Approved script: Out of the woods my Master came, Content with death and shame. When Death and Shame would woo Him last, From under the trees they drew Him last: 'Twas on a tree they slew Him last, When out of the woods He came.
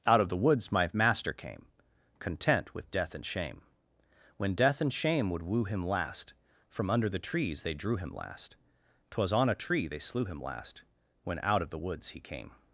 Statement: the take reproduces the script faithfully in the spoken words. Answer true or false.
true